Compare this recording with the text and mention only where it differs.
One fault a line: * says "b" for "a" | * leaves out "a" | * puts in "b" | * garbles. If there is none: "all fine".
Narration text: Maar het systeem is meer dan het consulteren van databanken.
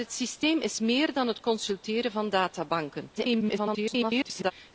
* garbles